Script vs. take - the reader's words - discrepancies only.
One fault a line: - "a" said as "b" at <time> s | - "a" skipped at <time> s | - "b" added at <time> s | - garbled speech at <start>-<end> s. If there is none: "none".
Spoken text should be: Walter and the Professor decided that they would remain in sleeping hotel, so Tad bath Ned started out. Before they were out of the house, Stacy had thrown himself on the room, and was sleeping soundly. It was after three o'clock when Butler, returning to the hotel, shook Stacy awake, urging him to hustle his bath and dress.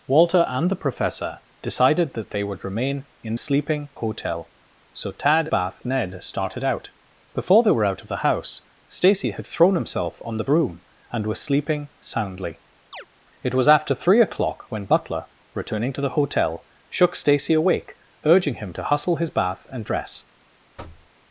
none